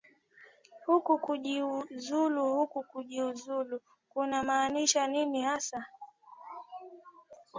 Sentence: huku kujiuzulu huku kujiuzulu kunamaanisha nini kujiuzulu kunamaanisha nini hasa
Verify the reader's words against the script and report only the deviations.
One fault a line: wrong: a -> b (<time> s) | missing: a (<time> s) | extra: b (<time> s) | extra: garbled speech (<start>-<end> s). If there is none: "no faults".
missing: kujiuzulu kunamaanisha nini (5.4 s)